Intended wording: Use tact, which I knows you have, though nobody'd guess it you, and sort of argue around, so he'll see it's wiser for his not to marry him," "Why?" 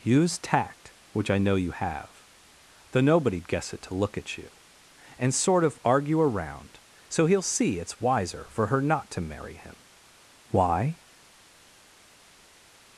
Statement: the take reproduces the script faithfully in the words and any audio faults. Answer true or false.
false